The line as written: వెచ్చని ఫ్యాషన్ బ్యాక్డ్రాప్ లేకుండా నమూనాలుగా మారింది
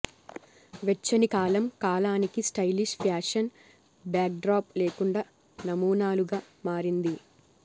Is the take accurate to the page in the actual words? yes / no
no